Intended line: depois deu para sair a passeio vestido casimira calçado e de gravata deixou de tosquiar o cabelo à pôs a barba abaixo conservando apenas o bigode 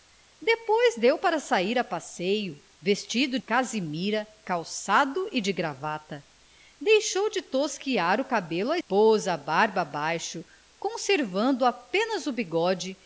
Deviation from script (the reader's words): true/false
false